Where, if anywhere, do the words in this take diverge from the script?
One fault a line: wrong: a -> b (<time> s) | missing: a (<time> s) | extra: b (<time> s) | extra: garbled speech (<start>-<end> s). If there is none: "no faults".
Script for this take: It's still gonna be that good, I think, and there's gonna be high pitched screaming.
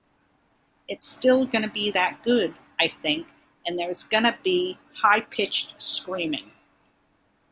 no faults